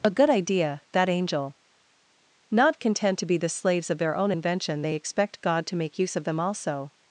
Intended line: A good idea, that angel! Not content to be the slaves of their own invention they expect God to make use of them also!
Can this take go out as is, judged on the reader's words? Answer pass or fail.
pass